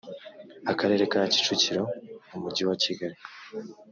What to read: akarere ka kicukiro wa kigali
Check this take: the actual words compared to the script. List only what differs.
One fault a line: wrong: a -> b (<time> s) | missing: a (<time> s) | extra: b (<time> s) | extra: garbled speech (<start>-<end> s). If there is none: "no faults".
extra: umujyi (2.4 s)